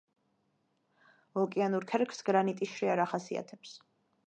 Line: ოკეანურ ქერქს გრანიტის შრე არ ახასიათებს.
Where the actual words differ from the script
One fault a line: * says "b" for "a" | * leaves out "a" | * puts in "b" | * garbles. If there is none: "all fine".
all fine